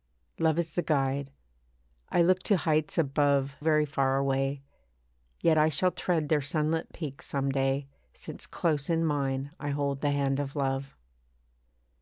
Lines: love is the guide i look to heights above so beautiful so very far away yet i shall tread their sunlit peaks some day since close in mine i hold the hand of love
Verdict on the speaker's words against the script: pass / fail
fail